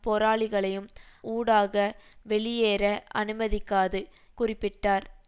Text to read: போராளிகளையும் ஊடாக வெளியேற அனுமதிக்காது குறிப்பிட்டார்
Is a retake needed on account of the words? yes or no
no